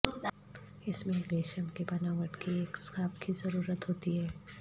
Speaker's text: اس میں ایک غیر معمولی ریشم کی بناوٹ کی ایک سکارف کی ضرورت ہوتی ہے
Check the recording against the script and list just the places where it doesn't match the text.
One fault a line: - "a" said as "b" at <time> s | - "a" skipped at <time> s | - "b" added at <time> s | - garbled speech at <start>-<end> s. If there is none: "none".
- "غیر معمولی" skipped at 1.3 s